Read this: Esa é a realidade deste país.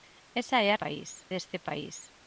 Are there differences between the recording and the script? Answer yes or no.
yes